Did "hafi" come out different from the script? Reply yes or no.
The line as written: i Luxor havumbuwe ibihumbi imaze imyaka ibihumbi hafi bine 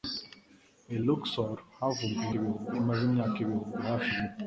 no